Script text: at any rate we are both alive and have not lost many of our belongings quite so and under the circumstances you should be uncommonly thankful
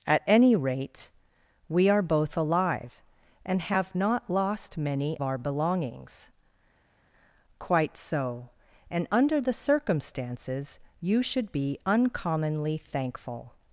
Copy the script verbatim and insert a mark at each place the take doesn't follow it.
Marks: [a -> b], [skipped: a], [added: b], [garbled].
at any rate we are both alive and have not lost many [skipped: of] our belongings quite so and under the circumstances you should be uncommonly thankful